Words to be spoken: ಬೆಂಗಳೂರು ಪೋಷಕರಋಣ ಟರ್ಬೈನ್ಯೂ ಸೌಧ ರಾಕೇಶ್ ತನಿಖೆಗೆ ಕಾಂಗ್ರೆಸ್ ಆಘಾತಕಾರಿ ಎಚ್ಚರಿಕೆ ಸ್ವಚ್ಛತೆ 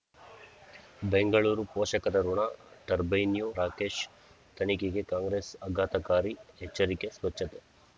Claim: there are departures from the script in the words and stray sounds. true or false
true